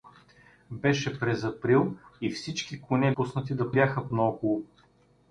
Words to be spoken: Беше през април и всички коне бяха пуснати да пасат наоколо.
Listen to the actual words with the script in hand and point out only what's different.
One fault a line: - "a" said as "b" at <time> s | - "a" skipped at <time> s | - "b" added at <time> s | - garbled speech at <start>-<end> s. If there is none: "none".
- "бяха" skipped at 3.1 s
- "пасат" said as "бяха" at 3.7 s